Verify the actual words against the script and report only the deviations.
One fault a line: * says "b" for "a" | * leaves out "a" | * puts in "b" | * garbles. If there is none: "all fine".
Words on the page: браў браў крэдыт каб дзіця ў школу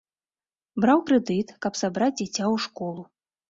* leaves out "браў"
* puts in "сабраць"